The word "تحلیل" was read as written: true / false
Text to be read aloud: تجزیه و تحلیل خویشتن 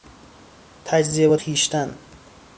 false